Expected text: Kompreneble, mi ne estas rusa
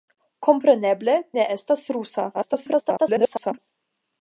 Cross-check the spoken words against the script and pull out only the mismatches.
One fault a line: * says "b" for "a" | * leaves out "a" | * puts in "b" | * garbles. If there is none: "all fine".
* leaves out "mi"
* garbles